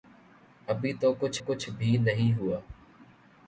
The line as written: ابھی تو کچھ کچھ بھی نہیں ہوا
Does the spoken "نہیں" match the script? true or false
true